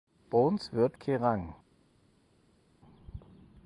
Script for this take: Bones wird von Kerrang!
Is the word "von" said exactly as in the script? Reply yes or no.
no